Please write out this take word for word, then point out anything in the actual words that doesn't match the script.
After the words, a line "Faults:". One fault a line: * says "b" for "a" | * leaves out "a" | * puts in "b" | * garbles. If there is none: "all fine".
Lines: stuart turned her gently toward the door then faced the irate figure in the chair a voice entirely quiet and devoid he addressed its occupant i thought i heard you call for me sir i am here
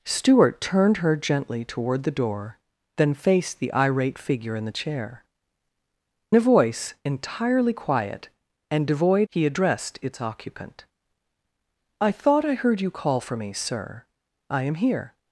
stuart turned her gently toward the door then faced the irate figure in the chair a voice entirely quiet and devoid he addressed its occupant i thought i heard you call for me sir i am here
Faults:
all fine